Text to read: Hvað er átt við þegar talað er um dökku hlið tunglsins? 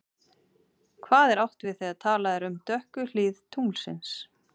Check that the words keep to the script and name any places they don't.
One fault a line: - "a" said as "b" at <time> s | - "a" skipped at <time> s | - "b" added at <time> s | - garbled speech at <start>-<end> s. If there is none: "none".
none